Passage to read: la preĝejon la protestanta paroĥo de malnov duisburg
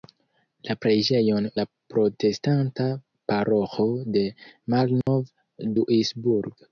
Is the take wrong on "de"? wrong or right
right